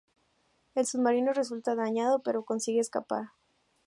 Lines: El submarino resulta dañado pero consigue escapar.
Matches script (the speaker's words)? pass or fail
pass